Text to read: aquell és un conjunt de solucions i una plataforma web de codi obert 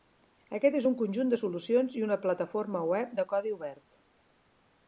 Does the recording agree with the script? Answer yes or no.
no